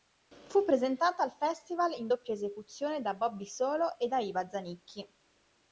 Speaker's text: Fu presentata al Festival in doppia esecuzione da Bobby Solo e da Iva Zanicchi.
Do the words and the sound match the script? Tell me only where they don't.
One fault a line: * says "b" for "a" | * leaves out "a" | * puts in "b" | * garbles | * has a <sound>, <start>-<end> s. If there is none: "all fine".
all fine